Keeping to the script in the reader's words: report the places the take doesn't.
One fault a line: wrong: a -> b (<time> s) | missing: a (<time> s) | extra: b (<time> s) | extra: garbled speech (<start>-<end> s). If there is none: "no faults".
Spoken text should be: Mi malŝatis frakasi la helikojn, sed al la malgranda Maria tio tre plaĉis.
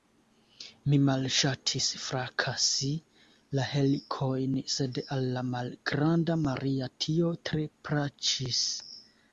no faults